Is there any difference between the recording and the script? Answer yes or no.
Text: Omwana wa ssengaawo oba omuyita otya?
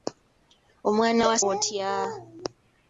yes